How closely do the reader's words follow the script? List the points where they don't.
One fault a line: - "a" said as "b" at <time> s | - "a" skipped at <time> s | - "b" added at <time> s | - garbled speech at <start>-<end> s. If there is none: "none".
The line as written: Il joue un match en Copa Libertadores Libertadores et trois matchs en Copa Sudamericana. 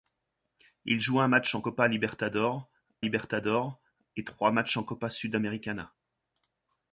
none